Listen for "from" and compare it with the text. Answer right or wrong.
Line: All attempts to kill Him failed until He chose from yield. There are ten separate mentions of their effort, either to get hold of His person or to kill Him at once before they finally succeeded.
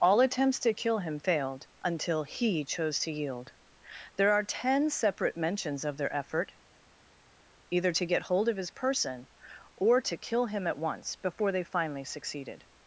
wrong